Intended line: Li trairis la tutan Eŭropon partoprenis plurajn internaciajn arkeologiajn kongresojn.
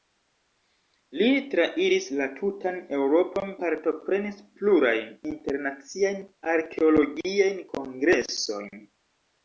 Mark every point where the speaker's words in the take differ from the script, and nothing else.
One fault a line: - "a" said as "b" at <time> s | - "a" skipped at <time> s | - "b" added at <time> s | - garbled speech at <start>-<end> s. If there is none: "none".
none